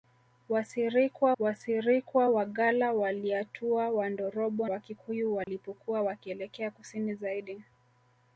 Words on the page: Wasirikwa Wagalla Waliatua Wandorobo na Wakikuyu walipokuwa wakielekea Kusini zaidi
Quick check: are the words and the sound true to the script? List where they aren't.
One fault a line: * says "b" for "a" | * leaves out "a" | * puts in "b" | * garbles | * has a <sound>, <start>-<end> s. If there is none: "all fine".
* puts in "wasirikwa"
* leaves out "na"
* has a dropout, 5.4-5.5 s